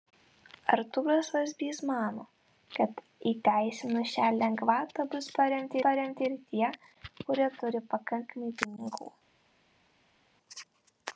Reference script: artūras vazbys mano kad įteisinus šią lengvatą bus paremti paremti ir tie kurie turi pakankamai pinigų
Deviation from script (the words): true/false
false